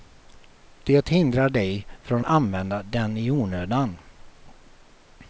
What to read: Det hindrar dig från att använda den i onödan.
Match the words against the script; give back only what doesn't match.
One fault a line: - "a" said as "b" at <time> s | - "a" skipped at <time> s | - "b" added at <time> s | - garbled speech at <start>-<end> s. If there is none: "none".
- "att" skipped at 2.2 s